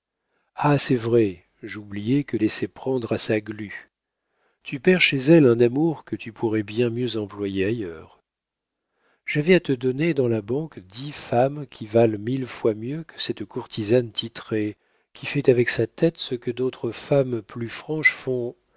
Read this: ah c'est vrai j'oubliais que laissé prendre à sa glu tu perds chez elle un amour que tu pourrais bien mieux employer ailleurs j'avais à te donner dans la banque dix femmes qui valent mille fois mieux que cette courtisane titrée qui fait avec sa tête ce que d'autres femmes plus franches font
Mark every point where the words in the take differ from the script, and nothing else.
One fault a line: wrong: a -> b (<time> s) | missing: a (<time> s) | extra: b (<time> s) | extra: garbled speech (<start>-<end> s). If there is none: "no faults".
no faults